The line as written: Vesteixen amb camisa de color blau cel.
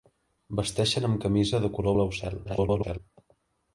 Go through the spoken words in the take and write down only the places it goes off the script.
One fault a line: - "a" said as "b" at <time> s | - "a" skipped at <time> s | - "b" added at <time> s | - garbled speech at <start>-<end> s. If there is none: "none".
- garbled speech at 2.4-3.0 s